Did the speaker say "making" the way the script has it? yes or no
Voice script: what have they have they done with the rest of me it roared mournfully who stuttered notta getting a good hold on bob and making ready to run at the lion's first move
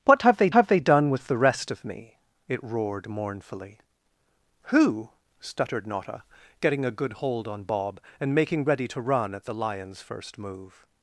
yes